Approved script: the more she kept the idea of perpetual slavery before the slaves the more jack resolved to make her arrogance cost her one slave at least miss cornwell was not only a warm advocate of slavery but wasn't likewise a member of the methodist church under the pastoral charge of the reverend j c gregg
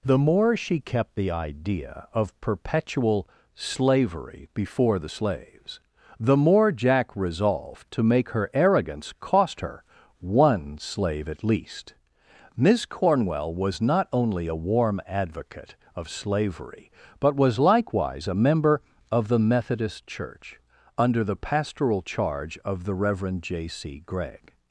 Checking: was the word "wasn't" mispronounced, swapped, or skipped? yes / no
yes